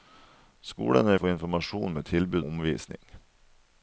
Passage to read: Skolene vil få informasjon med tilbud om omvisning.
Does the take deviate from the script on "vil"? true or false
true